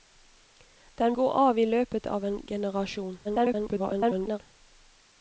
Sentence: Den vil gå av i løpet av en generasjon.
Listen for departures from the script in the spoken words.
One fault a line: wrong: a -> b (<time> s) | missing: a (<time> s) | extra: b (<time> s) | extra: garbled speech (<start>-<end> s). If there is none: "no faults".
missing: vil (1.1 s)
extra: garbled speech (3.2-4.4 s)